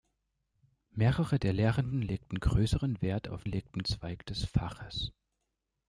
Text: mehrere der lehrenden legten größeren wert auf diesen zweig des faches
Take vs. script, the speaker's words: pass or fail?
fail